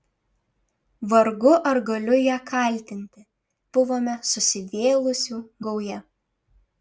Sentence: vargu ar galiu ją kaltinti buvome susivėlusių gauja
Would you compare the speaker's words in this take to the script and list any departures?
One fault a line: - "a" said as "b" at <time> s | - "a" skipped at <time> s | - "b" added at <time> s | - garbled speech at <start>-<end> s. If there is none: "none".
none